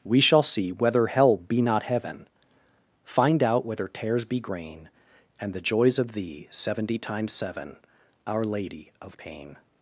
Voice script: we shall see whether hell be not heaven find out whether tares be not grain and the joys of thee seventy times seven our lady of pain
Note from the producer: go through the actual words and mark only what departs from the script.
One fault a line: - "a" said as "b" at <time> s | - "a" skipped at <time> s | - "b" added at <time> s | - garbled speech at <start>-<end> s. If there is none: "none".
- "not" skipped at 4.4 s